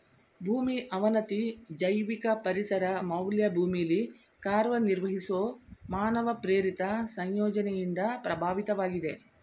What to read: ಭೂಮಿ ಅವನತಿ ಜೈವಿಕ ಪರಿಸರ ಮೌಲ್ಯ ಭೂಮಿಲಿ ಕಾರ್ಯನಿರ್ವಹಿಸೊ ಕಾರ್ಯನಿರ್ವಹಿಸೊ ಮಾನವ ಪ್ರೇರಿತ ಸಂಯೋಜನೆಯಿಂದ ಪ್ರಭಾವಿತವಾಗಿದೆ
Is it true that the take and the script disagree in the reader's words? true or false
true